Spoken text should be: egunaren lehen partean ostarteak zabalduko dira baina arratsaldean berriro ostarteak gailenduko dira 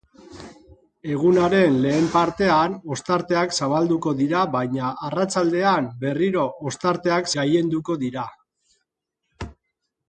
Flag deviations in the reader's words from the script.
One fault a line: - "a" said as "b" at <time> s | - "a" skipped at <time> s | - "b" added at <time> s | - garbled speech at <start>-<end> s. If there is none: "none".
none